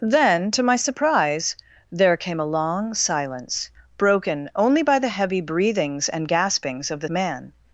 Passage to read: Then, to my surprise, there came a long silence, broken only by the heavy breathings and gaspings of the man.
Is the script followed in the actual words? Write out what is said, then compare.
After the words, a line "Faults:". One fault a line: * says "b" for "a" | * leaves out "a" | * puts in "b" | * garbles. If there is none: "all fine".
Then, to my surprise, there came a long silence, broken only by the heavy breathings and gaspings of the man.
Faults:
all fine